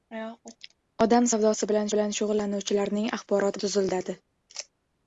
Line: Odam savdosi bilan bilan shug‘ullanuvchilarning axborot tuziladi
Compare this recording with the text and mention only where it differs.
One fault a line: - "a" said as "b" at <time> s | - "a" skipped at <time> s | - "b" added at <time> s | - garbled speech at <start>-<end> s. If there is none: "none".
none